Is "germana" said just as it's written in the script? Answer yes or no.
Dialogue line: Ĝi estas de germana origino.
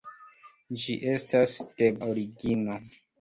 no